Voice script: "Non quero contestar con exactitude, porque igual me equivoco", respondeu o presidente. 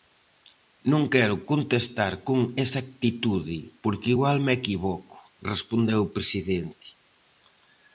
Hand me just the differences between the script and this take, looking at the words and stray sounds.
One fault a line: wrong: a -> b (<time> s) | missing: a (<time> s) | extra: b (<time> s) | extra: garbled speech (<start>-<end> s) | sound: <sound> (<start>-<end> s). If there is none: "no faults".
no faults